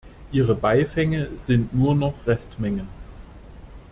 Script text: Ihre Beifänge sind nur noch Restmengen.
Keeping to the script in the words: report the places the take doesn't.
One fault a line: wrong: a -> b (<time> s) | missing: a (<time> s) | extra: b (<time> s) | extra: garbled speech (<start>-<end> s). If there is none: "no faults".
no faults